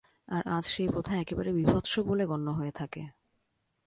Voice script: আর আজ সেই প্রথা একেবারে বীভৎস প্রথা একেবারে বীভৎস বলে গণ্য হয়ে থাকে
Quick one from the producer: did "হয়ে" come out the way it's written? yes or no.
yes